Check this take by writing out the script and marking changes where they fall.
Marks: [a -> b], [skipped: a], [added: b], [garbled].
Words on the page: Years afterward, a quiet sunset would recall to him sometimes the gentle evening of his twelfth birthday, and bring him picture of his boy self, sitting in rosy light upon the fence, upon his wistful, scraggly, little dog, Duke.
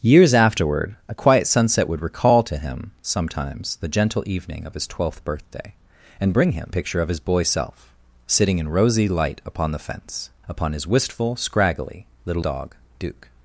Years afterward, a quiet sunset would recall to him sometimes the gentle evening of his twelfth birthday, and bring him picture of his boy self, sitting in rosy light upon the fence, upon his wistful, scraggly, little dog, Duke.